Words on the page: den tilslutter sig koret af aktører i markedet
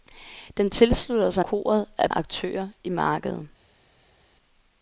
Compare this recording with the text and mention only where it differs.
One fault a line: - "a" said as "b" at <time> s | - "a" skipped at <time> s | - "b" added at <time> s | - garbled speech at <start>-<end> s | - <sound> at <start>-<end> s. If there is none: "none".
none